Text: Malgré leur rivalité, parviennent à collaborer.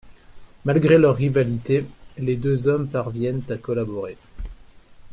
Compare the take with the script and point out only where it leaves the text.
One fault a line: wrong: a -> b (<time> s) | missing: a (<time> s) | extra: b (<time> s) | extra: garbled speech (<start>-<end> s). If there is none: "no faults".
extra: les deux hommes (2.2 s)